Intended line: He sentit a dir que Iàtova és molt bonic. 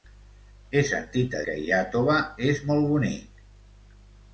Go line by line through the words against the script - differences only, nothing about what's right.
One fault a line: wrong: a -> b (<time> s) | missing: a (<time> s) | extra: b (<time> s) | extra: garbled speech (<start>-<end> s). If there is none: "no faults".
missing: dir (1.4 s)